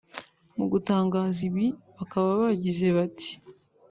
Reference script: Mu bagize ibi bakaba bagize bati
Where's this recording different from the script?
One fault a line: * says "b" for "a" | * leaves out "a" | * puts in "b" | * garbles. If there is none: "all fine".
* says "gutangaza" for "bagize"